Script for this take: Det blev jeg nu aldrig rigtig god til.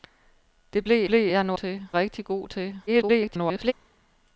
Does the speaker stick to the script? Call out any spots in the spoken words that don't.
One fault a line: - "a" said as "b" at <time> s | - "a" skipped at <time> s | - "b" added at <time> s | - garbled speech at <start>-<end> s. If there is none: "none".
- "blev" added at 1.1 s
- "aldrig" said as "til" at 1.5 s
- garbled speech at 2.9-3.7 s